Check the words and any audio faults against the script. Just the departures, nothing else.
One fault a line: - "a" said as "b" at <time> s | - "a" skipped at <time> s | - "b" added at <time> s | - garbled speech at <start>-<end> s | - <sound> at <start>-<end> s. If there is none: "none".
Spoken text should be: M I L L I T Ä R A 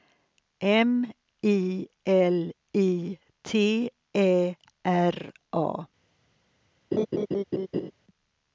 - "L" skipped at 2.5 s
- laugh at 6.9-7.9 s